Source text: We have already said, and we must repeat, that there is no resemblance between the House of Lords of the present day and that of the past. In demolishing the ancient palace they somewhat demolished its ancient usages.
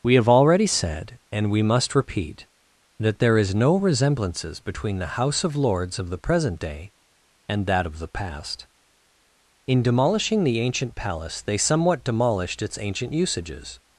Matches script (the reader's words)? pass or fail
fail